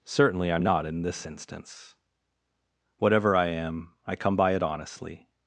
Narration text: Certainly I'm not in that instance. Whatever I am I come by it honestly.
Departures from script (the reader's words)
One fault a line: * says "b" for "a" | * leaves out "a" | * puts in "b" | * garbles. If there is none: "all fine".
* says "this" for "that"